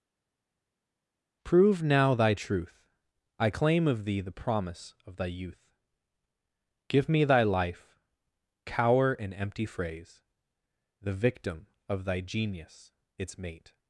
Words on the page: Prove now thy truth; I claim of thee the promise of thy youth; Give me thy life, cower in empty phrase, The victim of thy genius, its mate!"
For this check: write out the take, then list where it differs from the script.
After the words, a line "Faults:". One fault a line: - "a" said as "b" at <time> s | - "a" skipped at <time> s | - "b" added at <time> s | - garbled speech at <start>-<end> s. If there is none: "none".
Prove now thy truth; I claim of thee the promise of thy youth; Give me thy life, cower in empty phrase, The victim of thy genius, its mate!"
Faults:
none